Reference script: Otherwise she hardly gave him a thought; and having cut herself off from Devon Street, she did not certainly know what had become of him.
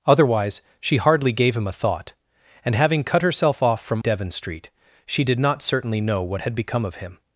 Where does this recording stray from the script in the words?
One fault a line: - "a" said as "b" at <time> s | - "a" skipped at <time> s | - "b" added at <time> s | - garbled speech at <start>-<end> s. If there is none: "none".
none